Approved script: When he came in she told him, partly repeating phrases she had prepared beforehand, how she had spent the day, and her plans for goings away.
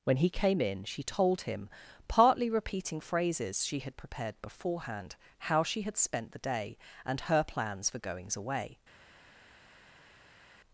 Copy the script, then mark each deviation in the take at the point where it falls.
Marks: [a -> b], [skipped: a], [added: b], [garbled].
When he came in she told him, partly repeating phrases she had prepared beforehand, how she had spent the day, and her plans for goings away.